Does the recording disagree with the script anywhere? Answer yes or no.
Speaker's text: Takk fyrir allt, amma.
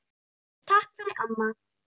yes